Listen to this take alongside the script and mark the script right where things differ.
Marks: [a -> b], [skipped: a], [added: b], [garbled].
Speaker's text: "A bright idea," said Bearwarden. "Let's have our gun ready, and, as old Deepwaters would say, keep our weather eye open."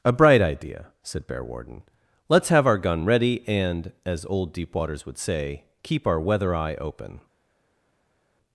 "A bright idea," said Bearwarden. "Let's have our gun ready, and, as old Deepwaters would say, keep our weather eye open."